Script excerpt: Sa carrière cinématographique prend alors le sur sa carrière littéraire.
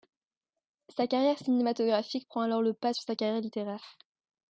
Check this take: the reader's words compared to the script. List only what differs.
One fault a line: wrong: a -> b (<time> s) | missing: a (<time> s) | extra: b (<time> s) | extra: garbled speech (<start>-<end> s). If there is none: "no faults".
extra: pas (2.7 s)